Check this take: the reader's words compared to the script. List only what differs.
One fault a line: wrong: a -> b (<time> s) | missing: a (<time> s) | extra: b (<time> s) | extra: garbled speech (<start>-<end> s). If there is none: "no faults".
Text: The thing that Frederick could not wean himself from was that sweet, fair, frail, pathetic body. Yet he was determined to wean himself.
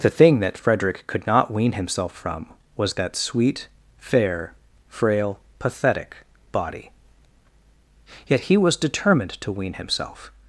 no faults